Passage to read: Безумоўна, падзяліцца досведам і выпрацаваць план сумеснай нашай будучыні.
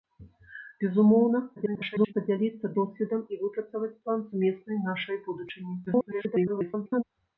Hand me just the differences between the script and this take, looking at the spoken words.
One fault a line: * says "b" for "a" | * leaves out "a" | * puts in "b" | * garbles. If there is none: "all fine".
* garbles
* garbles